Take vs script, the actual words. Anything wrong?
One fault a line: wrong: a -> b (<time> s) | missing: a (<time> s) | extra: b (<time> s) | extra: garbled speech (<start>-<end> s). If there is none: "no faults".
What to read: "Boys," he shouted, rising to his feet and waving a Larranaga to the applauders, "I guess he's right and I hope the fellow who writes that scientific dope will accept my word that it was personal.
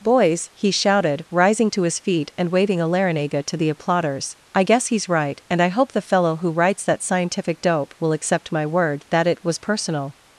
no faults